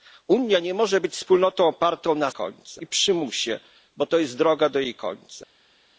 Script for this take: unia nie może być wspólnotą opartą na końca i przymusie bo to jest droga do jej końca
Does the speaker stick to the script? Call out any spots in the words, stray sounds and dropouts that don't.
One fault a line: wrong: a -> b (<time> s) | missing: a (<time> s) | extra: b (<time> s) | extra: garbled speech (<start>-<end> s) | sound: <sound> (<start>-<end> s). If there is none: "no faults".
no faults